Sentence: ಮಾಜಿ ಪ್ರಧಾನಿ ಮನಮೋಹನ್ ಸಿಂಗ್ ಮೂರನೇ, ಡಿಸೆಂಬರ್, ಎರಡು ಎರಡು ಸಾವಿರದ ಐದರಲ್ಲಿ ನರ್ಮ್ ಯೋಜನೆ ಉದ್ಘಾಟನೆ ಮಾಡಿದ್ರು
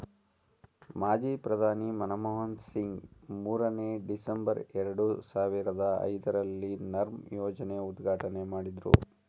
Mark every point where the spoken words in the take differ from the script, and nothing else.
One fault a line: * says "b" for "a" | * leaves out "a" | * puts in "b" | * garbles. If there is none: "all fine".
* leaves out "ಎರಡು"